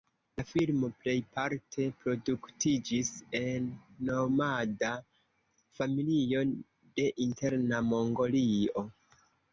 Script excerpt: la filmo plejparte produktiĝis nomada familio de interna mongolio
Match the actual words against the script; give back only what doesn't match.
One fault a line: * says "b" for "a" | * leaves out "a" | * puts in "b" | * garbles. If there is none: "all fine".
* puts in "en"